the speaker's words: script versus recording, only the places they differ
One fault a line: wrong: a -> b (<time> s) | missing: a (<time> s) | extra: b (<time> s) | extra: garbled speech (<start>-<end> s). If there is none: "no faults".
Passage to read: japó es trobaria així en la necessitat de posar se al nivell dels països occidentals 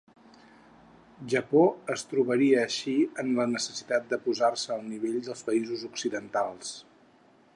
no faults